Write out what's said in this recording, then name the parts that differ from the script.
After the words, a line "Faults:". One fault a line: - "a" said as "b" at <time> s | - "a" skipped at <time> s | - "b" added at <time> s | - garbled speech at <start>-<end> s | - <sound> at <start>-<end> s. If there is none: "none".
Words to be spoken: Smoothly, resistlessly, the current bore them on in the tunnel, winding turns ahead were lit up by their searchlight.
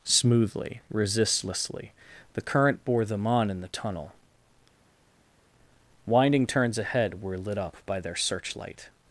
Smoothly, resistlessly, the current bore them on in the tunnel, winding turns ahead were lit up by their searchlight.
Faults:
none